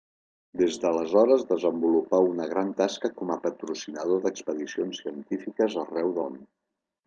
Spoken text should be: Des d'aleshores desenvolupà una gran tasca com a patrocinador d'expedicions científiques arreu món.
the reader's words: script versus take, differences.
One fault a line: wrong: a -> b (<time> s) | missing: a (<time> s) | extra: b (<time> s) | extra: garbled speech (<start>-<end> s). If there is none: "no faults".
no faults